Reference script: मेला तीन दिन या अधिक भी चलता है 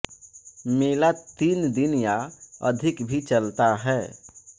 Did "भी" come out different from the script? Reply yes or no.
no